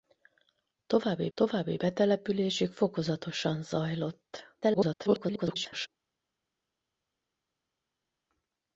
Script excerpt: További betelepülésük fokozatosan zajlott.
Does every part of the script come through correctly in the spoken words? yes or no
no